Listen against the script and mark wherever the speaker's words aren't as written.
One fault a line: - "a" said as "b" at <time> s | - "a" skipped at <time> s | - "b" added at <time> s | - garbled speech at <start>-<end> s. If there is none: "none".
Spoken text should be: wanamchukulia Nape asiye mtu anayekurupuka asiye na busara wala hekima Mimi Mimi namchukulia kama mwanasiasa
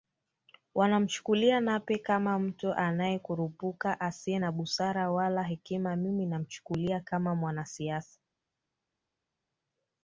- "asiye" said as "kama" at 2.0 s
- "Mimi" skipped at 6.3 s